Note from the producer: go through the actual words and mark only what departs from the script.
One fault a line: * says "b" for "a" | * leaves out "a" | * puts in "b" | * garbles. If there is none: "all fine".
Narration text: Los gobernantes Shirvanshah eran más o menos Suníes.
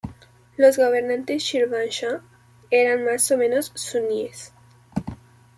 all fine